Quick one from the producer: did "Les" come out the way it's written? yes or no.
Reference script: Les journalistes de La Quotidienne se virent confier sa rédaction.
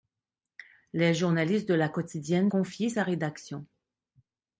yes